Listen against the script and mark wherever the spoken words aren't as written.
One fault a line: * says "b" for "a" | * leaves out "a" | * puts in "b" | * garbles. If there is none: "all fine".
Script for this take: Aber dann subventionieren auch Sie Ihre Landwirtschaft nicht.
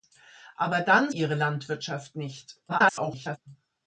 * leaves out "subventionieren auch Sie"
* garbles